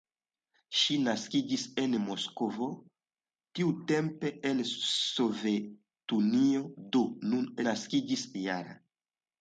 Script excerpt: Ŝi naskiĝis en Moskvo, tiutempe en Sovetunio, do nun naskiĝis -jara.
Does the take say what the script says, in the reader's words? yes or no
yes